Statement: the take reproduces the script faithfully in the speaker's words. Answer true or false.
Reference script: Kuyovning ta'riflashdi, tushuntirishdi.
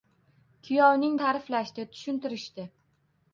true